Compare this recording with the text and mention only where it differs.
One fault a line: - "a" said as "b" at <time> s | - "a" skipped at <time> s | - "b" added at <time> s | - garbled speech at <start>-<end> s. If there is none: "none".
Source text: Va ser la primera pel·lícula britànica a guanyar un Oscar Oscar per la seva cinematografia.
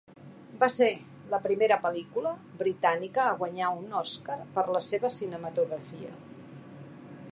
- "Oscar" skipped at 4.4 s